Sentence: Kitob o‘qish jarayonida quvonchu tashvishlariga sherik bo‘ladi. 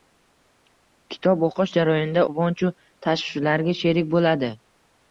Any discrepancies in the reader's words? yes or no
no